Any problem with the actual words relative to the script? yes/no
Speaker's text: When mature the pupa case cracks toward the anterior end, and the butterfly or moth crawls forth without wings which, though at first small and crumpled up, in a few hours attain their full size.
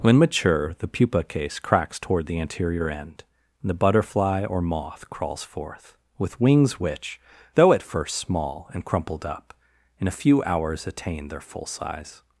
yes